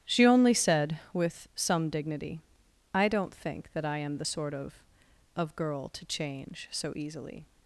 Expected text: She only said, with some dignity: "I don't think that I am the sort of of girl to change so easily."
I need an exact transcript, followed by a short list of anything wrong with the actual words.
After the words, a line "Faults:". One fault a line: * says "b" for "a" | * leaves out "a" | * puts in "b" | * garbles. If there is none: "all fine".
She only said, with some dignity: "I don't think that I am the sort of of girl to change so easily."
Faults:
all fine